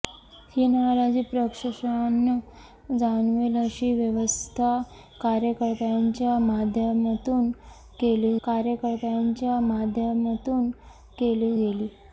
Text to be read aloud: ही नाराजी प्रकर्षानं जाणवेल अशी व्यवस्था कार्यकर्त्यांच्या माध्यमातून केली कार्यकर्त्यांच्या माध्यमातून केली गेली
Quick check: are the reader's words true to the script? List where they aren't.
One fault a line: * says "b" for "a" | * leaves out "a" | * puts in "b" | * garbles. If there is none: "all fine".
all fine